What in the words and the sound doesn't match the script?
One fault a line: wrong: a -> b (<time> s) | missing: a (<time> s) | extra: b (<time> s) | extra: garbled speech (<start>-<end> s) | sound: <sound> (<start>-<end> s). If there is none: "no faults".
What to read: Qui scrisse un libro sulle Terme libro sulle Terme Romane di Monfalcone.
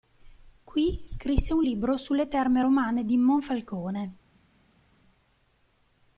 missing: libro sulle Terme (2.6 s)